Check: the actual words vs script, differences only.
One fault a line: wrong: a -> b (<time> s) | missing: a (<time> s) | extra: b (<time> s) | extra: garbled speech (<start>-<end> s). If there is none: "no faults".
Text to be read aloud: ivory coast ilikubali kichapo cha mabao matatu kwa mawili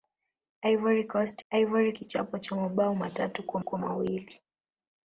wrong: ilikubali -> ivory (1.5 s)
extra: kwa (3.6 s)